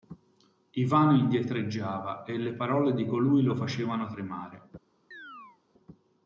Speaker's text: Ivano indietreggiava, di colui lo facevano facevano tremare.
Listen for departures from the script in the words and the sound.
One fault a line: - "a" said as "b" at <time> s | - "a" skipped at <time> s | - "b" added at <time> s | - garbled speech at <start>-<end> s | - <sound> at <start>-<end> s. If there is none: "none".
- "e le parole" added at 2.2 s
- "facevano" skipped at 4.1 s
- chirp at 5.1-5.6 s